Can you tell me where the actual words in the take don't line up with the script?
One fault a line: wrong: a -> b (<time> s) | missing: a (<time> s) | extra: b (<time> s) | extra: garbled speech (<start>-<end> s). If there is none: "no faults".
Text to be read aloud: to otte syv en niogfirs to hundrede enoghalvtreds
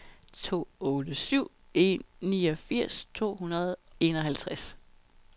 no faults